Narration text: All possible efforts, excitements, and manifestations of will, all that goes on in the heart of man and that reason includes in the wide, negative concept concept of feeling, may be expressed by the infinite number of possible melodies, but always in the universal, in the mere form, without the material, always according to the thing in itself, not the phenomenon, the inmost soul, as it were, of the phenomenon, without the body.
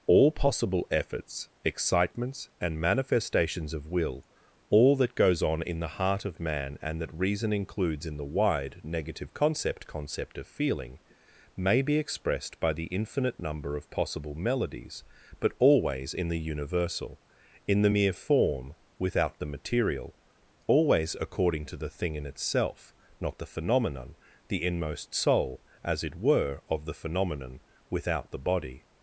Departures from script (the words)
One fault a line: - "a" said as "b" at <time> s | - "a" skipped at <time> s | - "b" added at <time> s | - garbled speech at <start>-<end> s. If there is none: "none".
none